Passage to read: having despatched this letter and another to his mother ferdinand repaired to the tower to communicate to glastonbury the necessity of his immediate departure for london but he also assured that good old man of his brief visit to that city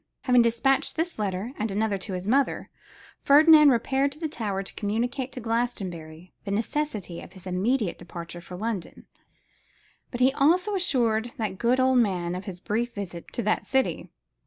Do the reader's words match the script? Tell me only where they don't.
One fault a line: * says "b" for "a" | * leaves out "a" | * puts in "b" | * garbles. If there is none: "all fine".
all fine